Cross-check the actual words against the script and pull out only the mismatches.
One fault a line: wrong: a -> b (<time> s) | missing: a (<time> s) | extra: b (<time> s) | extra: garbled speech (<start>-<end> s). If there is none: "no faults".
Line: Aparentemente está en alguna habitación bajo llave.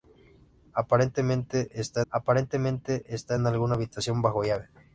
extra: aparentemente está (2.1 s)